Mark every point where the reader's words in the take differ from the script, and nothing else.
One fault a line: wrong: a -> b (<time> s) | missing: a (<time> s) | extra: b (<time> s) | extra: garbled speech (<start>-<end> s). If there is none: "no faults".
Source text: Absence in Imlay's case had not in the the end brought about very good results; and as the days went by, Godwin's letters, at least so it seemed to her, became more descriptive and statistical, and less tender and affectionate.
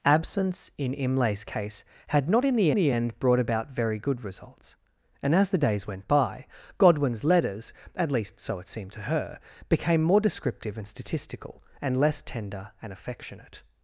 no faults